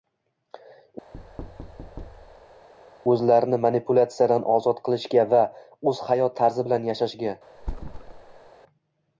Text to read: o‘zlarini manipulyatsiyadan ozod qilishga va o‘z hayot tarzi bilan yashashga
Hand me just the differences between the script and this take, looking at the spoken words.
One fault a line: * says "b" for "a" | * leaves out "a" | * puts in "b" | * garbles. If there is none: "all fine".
all fine